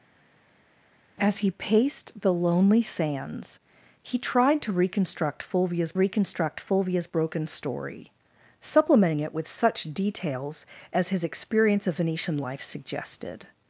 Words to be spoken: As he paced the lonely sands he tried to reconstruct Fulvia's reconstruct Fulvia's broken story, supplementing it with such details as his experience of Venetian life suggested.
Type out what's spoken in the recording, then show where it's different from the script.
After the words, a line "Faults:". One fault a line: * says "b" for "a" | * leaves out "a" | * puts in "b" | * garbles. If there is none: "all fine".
As he paced the lonely sands he tried to reconstruct Fulvia's reconstruct Fulvia's broken story, supplementing it with such details as his experience of Venetian life suggested.
Faults:
all fine